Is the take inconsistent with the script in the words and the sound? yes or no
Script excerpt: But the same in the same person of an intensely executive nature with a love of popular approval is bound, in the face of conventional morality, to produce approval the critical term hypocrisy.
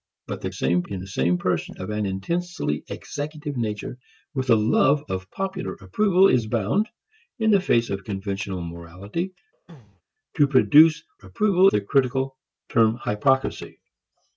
yes